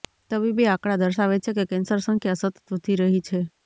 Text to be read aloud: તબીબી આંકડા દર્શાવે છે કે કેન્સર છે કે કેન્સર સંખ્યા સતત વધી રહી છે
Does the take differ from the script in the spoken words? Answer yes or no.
yes